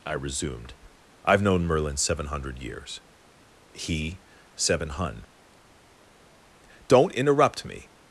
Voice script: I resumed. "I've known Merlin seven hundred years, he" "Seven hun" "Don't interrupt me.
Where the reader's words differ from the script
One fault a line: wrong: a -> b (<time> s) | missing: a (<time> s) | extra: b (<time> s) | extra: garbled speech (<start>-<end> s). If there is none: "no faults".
no faults